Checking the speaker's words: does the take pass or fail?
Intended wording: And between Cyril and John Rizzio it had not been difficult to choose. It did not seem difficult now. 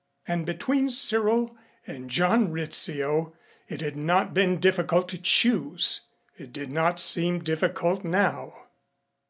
pass